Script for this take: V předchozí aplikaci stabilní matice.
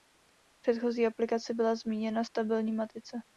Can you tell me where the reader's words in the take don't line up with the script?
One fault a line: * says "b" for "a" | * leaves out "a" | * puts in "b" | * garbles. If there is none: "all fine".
* puts in "byla zmíněna"